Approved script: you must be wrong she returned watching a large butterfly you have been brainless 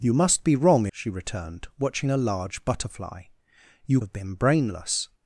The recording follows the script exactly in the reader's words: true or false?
true